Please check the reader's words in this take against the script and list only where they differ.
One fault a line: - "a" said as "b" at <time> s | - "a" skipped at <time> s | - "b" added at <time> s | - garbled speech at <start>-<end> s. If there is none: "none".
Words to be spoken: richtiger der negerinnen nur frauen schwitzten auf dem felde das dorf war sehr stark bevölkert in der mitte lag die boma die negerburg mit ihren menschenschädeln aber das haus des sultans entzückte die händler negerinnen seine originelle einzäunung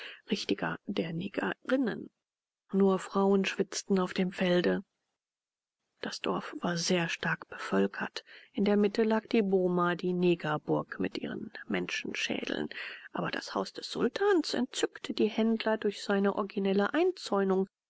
- "negerinnen" said as "durch" at 15.8 s